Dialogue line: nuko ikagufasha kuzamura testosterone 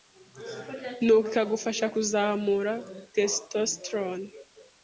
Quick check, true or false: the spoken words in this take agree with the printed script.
true